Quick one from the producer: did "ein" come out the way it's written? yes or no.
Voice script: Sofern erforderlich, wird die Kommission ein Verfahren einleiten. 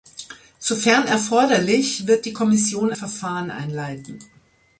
no